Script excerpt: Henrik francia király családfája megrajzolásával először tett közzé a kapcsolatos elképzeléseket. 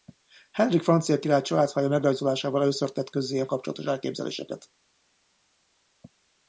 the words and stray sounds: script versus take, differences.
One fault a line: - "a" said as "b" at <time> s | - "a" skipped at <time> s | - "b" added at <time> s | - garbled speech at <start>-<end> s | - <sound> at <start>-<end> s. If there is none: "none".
none